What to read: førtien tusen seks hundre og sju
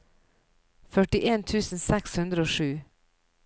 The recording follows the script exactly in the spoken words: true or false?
true